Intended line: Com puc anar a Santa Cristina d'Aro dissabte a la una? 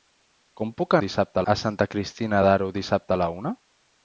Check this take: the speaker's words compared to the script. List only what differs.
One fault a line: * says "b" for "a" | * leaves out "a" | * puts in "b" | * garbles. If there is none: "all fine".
* says "dissabte" for "anar"